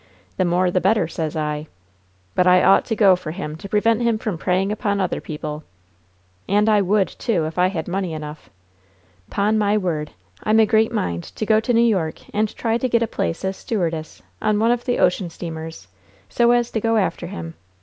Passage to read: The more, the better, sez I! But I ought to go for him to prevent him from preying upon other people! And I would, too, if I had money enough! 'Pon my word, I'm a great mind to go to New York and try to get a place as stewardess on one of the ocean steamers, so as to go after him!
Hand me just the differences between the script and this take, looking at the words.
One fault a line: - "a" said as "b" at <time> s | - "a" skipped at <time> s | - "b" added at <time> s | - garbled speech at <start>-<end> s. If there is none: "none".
none